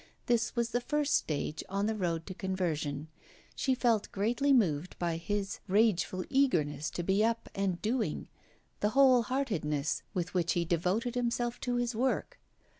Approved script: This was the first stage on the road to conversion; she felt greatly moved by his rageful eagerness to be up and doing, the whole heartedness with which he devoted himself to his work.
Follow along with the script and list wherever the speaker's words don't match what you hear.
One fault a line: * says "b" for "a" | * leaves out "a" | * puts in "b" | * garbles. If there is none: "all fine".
all fine